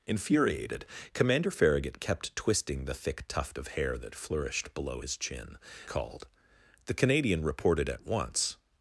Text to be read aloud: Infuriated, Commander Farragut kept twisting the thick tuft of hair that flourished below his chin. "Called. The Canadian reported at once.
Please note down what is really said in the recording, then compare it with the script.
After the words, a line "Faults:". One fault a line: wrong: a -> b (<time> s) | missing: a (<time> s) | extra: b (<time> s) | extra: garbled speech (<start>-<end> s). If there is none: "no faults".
Infuriated, Commander Farragut kept twisting the thick tuft of hair that flourished below his chin. "Called. The Canadian reported at once.
Faults:
no faults